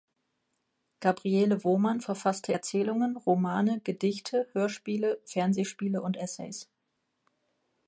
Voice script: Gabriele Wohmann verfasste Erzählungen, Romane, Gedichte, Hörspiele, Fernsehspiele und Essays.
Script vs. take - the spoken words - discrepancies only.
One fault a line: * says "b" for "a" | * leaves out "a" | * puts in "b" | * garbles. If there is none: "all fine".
all fine